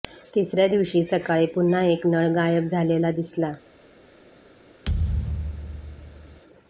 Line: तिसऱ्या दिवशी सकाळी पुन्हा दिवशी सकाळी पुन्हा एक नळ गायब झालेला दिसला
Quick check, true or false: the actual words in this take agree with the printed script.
false